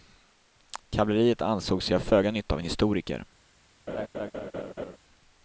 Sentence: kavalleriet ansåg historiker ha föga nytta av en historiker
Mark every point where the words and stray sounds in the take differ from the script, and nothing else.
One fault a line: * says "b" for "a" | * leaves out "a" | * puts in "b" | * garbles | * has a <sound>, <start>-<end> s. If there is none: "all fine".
* says "sig" for "historiker"
* has a laugh, 3.9-5.0 s